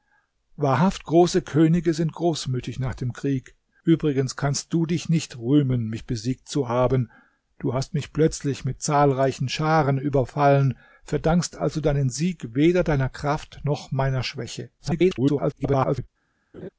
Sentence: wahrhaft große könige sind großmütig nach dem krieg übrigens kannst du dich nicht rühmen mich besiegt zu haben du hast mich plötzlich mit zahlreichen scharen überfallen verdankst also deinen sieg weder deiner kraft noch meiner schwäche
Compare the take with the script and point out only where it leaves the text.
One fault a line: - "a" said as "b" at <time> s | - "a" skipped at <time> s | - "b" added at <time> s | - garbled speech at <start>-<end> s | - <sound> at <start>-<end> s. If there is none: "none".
- garbled speech at 14.8-16.1 s
- laugh at 16.5-16.7 s